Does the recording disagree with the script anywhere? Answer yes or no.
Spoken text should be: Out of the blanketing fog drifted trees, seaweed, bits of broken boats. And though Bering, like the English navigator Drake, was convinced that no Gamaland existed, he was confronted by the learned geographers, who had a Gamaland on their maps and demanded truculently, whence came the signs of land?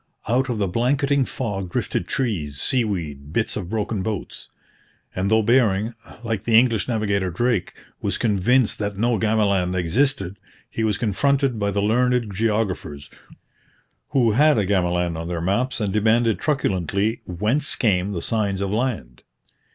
no